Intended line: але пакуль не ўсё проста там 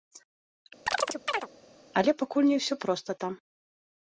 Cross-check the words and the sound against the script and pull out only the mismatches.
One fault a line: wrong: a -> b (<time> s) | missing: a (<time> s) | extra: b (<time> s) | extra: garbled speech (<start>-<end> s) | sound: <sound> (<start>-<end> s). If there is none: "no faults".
sound: chirp (0.9-1.5 s)